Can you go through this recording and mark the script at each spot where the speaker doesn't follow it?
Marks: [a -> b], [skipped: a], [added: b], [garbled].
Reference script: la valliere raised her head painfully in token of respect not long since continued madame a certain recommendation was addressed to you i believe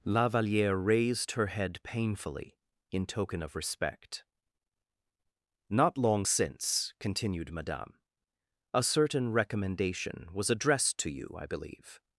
la valliere raised her head painfully in token of respect not long since continued madame a certain recommendation was addressed to you i believe